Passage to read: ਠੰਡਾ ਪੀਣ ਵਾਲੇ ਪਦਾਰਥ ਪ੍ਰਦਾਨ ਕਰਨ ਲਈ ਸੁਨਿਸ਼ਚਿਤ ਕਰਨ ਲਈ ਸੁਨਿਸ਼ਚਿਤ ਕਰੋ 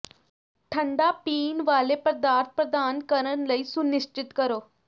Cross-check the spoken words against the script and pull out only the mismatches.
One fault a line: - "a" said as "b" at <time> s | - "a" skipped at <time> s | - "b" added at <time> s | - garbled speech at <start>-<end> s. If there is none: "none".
- "ਕਰਨ ਲਈ ਸੁਨਿਸ਼ਚਿਤ" skipped at 4.3 s